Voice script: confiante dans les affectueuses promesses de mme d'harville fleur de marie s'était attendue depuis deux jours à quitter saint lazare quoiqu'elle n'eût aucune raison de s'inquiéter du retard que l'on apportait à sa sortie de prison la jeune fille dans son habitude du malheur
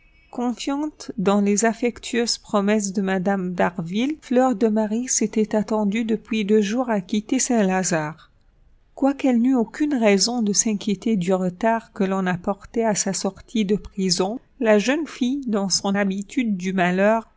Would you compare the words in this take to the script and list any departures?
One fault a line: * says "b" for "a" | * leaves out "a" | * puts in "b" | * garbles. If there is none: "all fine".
all fine